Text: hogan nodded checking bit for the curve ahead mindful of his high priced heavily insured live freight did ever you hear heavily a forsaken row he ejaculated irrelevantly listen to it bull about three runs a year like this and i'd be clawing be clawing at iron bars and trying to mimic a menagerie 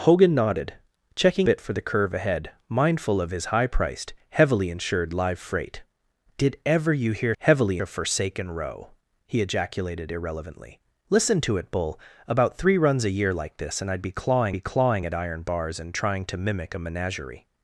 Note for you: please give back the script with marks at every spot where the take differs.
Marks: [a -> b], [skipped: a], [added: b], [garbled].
hogan nodded checking bit for the curve ahead mindful of his high priced heavily insured live freight did ever you hear heavily a forsaken row he ejaculated irrelevantly listen to it bull about three runs a year like this and i'd be clawing be clawing at iron bars and trying to mimic a menagerie